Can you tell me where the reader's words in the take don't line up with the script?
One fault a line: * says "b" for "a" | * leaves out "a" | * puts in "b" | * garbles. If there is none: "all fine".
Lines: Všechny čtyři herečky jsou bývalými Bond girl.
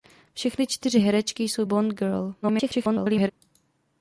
* leaves out "bývalými"
* garbles